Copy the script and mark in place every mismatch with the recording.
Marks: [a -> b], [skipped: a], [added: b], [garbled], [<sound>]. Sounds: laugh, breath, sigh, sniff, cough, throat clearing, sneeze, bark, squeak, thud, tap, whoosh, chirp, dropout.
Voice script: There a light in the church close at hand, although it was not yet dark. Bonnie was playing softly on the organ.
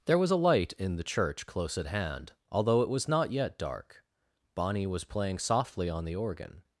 There [added: was] a light in the church close at hand, although it was not yet dark. Bonnie was playing softly on the organ.